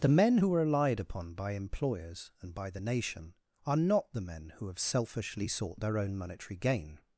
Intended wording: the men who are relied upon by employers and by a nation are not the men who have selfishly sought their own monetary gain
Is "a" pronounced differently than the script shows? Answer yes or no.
yes